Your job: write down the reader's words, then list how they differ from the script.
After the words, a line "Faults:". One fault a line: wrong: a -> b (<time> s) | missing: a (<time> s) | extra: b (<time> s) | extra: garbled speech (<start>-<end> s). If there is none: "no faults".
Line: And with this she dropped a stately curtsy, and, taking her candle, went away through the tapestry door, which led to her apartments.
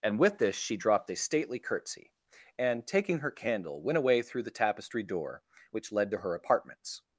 And with this she dropped a stately curtsy, and, taking her candle, went away through the tapestry door, which led to her apartments.
Faults:
no faults